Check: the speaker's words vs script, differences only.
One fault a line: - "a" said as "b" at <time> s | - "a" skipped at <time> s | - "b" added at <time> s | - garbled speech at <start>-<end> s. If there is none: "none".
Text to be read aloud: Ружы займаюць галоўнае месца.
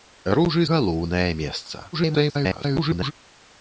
- "займаюць" skipped at 0.6 s
- garbled speech at 1.9-3.1 s